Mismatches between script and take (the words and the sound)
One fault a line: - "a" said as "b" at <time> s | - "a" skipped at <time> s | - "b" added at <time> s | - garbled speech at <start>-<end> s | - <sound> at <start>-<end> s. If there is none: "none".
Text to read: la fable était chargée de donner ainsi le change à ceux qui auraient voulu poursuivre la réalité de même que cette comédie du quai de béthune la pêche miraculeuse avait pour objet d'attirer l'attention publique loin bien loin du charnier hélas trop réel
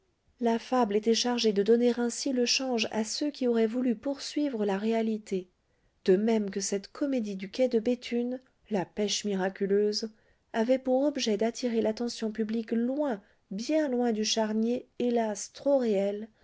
none